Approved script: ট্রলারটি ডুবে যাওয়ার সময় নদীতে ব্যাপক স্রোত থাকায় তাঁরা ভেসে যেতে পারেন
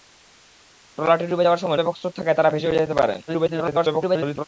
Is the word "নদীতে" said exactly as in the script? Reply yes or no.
no